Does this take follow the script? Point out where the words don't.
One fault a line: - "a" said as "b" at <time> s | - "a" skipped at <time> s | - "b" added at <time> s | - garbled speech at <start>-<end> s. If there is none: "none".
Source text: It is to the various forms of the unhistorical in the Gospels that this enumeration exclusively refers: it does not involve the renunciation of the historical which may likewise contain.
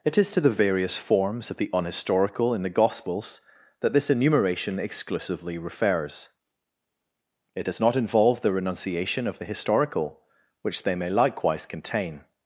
- "they" added at 10.8 s